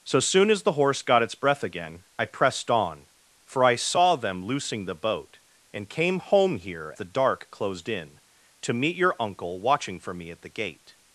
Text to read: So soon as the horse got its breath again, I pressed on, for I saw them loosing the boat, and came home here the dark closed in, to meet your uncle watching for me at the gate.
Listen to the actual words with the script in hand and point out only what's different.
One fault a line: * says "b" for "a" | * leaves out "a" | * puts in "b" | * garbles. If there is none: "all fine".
all fine